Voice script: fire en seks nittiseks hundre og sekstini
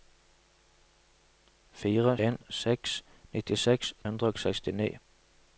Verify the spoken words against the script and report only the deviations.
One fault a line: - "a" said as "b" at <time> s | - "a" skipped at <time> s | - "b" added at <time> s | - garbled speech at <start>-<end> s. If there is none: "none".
none